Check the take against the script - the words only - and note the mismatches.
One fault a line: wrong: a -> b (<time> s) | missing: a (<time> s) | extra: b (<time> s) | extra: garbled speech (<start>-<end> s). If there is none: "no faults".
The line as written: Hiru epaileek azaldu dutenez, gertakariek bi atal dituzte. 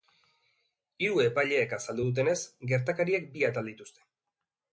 no faults